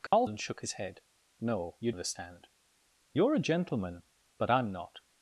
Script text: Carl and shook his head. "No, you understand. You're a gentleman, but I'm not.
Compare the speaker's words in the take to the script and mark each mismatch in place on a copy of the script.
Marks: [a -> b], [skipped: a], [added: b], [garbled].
Carl and shook his head. "No, you understand. You're a gentleman, but I'm not.